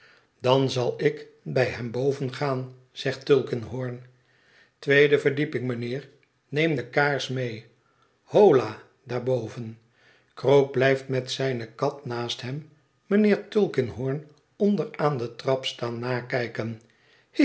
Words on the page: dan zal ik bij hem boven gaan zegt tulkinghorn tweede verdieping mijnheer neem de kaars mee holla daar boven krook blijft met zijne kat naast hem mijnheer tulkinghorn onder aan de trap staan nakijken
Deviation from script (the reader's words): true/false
false